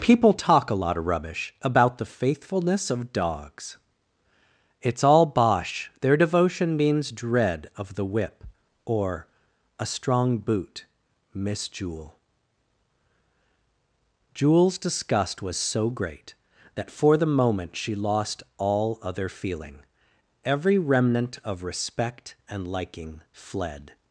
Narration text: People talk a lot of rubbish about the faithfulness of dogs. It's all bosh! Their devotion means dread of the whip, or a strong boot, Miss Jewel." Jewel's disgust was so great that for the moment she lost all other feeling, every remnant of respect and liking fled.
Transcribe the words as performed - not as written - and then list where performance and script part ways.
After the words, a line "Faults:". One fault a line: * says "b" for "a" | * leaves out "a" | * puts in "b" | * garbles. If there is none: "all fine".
People talk a lot of rubbish about the faithfulness of dogs. It's all bosh! Their devotion means dread of the whip, or a strong boot, Miss Jewel." Jewel's disgust was so great that for the moment she lost all other feeling, every remnant of respect and liking fled.
Faults:
all fine